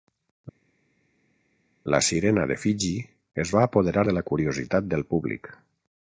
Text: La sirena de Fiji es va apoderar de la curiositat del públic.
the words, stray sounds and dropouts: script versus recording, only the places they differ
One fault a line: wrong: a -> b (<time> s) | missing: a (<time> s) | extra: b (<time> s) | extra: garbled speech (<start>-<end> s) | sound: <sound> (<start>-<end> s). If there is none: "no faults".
no faults